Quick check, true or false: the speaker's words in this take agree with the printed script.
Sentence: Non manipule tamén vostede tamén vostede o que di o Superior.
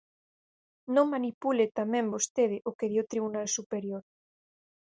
false